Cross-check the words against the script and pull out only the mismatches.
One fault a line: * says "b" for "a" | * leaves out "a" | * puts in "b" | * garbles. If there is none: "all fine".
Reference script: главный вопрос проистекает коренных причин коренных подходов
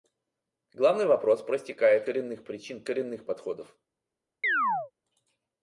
all fine